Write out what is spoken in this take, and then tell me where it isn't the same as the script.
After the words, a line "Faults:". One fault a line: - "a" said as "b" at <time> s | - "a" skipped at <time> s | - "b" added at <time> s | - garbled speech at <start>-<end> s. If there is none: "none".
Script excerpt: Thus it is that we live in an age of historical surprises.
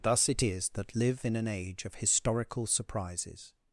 Thus it is that live in an age of historical surprises.
Faults:
- "we" skipped at 0.9 s